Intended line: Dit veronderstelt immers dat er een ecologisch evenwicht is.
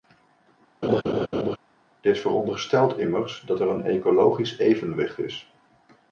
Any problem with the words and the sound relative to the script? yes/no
yes